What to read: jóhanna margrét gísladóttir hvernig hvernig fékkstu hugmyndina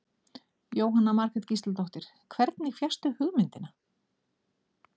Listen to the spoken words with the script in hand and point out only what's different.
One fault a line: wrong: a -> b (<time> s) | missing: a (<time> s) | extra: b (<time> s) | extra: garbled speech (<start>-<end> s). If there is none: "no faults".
missing: hvernig (2.7 s)